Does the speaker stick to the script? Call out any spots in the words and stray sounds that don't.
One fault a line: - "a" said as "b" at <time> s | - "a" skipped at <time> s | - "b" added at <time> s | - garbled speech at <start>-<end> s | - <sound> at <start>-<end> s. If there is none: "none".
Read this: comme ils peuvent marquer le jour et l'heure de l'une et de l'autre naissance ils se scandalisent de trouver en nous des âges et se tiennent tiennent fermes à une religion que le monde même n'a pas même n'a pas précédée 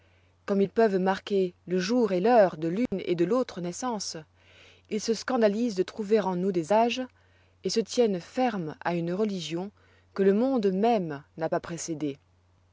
- dropout at 2.9-2.9 s
- "tiennent" skipped at 8.2 s
- "même n'a pas" skipped at 11.6 s